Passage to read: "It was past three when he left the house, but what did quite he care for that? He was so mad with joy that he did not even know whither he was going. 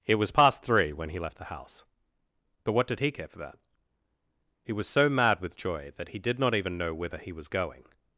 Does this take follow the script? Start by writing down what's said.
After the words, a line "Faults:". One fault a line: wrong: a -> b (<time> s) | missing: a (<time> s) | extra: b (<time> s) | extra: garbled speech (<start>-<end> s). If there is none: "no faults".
"It was past three when he left the house, but what did he care for that? He was so mad with joy that he did not even know whither he was going.
Faults:
missing: quite (3.0 s)